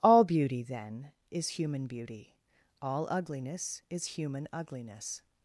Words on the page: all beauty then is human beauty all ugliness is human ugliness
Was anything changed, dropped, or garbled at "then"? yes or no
no